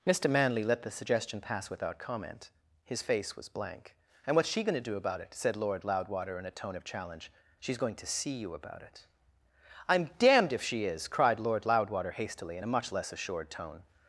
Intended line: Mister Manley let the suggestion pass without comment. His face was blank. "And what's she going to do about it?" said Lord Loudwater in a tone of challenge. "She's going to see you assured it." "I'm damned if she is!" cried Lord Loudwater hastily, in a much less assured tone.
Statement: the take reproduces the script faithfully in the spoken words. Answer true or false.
false